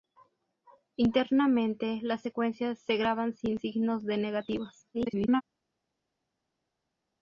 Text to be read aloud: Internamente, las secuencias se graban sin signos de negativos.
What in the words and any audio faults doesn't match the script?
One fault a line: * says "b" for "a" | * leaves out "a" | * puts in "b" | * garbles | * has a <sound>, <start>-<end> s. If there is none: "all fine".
* garbles